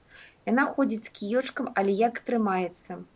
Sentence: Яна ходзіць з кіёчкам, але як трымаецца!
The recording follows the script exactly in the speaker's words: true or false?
true